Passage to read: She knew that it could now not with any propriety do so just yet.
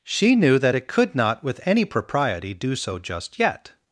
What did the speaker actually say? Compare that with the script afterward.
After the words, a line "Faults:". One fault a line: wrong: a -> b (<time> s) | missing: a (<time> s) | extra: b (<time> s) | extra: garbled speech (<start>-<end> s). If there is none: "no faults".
She knew that it could not with any propriety do so just yet.
Faults:
missing: now (1.1 s)